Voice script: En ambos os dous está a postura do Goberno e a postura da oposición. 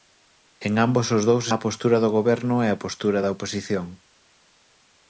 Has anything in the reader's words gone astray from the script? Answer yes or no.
yes